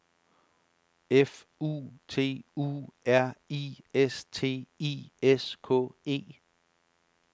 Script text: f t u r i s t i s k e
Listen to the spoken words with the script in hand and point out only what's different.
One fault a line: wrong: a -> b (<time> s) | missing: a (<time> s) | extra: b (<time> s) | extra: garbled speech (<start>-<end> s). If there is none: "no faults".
extra: u (1.6 s)